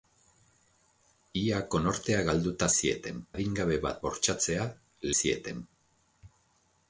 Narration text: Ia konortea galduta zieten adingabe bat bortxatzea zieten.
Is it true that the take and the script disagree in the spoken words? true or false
false